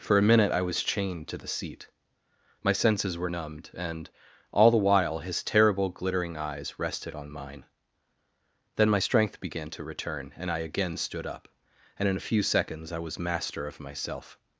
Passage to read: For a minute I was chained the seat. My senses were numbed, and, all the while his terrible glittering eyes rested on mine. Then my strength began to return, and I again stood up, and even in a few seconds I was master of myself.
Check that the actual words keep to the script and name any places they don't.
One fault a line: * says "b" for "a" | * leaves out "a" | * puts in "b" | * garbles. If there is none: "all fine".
* puts in "to"
* leaves out "even"